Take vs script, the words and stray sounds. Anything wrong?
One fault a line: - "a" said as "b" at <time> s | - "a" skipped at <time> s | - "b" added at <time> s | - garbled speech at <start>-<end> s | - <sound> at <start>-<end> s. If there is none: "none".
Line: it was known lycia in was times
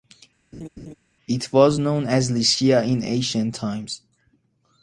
- laugh at 0.5-0.9 s
- "as" added at 2.0 s
- "was" said as "ancient" at 3.0 s